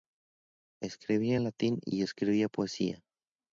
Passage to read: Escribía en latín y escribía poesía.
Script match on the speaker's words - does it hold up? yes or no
yes